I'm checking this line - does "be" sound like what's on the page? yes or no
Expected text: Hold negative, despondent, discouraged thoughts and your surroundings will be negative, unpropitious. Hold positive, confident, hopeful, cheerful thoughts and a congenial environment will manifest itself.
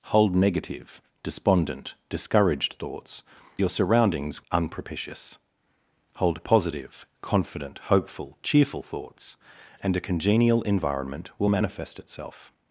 no